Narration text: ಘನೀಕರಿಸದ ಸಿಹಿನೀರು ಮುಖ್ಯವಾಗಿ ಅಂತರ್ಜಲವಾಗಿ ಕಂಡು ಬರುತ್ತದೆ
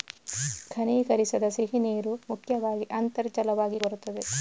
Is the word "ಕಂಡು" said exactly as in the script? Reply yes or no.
no